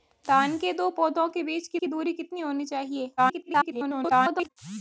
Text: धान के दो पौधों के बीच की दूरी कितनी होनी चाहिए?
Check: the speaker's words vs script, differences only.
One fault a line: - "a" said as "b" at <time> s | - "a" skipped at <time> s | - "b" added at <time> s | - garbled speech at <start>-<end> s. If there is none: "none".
- "की" added at 1.8 s
- garbled speech at 3.2-4.5 s